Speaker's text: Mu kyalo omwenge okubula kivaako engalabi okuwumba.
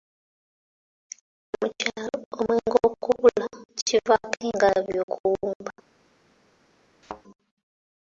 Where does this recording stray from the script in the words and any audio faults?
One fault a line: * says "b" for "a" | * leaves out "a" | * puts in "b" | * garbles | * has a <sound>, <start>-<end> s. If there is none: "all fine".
* has a thud, 7.0-7.2 s